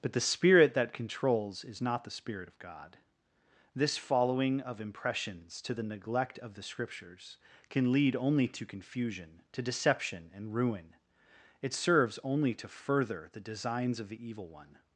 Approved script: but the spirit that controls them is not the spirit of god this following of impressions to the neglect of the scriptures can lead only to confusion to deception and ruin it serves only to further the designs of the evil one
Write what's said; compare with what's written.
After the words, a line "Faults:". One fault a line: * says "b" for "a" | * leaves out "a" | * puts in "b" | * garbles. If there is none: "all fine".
but the spirit that controls is not the spirit of god this following of impressions to the neglect of the scriptures can lead only to confusion to deception and ruin it serves only to further the designs of the evil one
Faults:
* leaves out "them"